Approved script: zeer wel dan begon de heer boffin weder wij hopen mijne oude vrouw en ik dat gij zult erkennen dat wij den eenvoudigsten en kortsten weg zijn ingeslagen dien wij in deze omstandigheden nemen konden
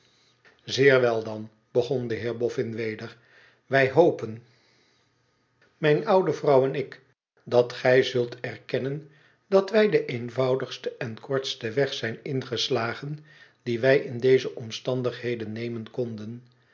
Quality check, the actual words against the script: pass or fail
pass